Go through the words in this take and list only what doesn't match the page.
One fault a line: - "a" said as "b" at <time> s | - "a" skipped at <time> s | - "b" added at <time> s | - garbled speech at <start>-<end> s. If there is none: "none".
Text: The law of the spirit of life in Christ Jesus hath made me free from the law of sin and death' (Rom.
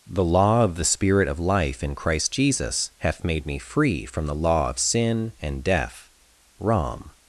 none